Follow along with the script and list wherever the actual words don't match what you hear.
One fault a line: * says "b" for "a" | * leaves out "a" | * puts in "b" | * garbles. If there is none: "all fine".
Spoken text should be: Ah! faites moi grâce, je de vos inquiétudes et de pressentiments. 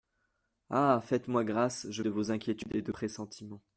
all fine